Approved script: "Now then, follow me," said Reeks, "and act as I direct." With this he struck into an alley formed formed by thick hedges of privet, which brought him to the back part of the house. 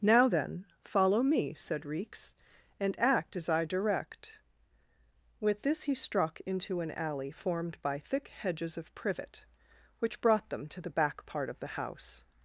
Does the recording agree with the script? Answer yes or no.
no